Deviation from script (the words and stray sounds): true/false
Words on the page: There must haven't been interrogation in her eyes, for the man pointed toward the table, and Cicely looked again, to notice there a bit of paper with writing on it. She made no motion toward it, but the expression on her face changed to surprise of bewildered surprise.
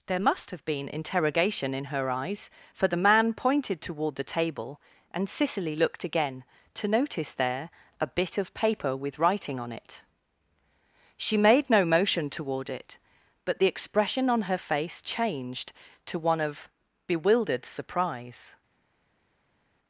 true